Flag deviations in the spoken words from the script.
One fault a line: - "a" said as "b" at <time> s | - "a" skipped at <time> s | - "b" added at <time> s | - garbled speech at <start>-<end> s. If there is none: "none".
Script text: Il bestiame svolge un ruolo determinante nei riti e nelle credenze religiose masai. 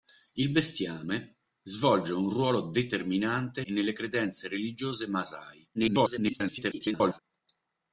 - "nei riti" skipped at 3.6 s
- garbled speech at 5.7-7.2 s